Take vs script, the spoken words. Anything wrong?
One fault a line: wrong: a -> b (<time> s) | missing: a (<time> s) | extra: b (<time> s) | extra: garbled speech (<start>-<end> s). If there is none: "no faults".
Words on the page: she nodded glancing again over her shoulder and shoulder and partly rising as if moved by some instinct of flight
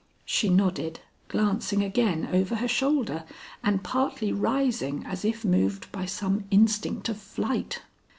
missing: shoulder and (3.8 s)